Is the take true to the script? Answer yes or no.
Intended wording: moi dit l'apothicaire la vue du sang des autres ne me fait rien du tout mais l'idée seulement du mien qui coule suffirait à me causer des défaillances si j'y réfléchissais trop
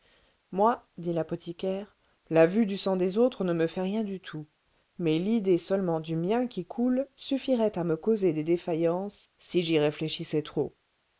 yes